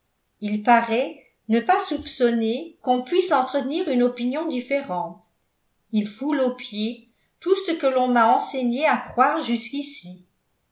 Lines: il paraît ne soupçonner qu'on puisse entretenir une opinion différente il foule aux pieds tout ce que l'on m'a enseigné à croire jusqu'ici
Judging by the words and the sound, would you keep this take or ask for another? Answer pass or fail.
fail